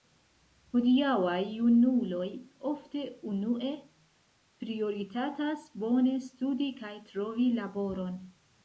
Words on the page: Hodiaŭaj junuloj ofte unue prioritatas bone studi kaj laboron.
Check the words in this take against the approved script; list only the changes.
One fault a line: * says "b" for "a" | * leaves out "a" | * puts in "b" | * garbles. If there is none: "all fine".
* puts in "trovi"